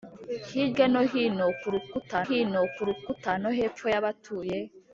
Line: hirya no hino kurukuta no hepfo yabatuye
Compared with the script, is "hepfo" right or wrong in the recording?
right